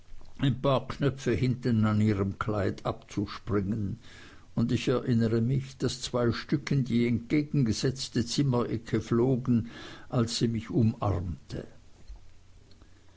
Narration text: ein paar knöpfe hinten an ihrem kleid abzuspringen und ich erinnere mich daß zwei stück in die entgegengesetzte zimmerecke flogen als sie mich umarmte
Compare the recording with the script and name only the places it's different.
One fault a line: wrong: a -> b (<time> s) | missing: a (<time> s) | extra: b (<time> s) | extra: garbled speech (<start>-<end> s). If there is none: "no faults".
no faults